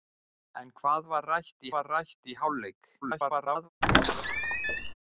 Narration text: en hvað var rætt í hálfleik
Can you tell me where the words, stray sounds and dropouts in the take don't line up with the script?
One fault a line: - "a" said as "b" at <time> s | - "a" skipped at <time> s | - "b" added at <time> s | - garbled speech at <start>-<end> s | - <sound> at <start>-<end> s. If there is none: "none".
- "var rætt" added at 1.7 s
- garbled speech at 3.0-3.7 s
- squeak at 3.8-4.9 s